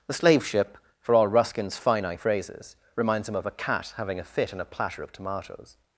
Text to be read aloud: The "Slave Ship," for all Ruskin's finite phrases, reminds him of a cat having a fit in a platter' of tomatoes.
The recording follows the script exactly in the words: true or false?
true